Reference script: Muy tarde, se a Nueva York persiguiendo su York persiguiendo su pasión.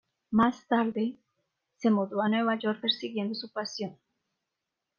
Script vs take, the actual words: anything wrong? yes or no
yes